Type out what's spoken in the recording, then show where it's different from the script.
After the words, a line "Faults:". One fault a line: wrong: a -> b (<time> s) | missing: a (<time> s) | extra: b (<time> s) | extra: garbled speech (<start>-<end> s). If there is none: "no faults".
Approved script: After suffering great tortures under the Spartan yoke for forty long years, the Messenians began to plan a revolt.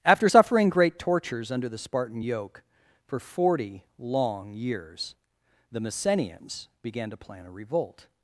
After suffering great tortures under the Spartan yoke for forty long years, the Messenians began to plan a revolt.
Faults:
no faults